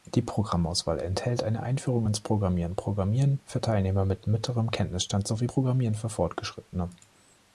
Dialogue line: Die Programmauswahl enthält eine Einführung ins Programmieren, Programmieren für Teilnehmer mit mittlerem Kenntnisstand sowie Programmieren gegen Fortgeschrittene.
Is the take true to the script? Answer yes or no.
no